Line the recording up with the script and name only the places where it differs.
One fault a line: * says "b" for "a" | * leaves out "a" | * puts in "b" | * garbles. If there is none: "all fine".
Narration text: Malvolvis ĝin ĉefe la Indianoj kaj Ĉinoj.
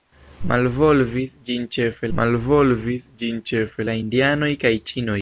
* puts in "malvolvis ĝin ĉefe"